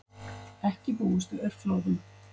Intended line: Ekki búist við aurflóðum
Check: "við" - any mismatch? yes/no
no